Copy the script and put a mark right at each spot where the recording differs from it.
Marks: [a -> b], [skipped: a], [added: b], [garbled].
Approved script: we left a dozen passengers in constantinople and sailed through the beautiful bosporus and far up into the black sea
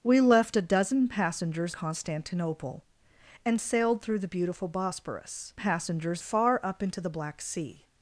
we left a dozen passengers [skipped: in] constantinople and sailed through the beautiful bosporus [and -> passengers] far up into the black sea